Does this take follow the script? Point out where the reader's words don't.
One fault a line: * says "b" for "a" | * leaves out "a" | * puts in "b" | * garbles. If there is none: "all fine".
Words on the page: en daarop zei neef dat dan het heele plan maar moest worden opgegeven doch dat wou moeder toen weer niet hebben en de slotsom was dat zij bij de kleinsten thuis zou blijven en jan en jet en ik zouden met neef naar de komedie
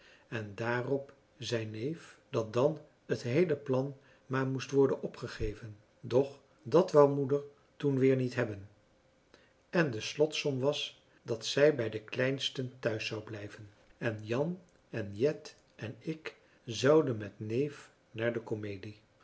all fine